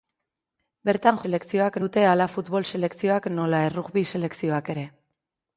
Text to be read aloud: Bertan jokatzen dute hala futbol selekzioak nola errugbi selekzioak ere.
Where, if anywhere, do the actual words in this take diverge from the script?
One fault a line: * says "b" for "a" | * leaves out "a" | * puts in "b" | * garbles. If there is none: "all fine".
* says "selekzioak" for "jokatzen"